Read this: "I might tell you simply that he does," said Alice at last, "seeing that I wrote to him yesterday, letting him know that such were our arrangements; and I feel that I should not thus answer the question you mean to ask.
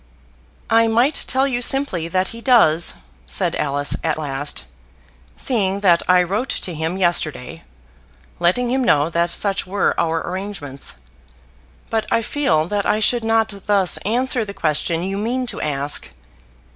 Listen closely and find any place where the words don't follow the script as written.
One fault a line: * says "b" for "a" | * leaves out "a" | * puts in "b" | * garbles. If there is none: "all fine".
* says "but" for "and"